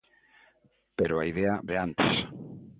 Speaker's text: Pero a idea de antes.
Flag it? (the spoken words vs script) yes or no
no